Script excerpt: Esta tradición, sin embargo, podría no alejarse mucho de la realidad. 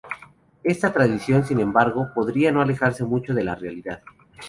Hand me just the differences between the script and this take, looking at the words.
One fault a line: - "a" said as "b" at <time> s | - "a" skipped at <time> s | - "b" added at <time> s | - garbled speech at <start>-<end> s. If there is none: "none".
none